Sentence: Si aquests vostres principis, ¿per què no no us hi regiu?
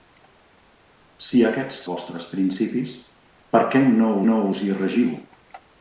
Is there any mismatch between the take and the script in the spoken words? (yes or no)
no